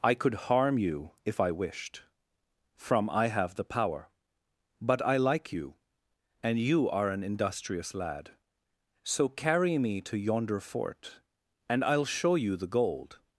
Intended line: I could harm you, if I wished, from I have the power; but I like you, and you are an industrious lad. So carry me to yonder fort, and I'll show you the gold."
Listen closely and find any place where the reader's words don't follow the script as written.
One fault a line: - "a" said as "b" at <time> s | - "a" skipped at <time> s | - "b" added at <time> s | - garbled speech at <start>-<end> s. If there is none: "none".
none